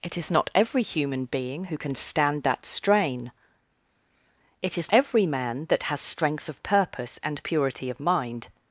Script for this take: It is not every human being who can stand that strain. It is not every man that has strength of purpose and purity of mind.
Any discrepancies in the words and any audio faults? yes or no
yes